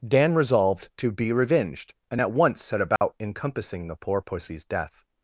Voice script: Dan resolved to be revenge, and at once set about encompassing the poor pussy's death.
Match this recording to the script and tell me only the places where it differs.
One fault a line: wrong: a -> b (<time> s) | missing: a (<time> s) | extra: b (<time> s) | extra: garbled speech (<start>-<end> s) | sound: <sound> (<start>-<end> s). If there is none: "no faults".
wrong: revenge -> revenged (1.3 s)
sound: dropout (3.0-3.0 s)